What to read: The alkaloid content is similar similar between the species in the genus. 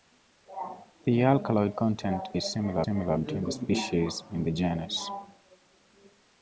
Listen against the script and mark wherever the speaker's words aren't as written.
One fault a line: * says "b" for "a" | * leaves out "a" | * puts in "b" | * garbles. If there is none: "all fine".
all fine